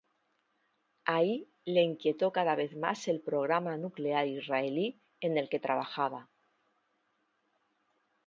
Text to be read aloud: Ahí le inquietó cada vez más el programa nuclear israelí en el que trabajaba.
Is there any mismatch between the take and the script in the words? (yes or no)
no